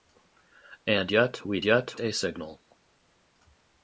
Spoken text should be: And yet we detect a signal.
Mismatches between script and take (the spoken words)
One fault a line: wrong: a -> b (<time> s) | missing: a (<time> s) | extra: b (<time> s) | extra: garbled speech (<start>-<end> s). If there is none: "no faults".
wrong: detect -> yet (1.6 s)